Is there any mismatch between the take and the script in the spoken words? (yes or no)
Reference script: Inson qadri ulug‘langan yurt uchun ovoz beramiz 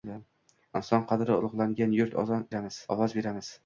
yes